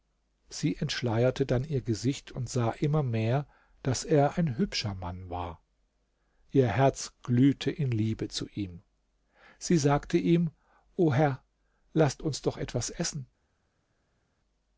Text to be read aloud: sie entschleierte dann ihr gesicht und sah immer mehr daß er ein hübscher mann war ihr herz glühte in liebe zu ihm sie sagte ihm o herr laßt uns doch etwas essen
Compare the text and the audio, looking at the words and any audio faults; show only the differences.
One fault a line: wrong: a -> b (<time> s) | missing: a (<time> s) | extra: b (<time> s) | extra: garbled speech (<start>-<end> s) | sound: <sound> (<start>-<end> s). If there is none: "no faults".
no faults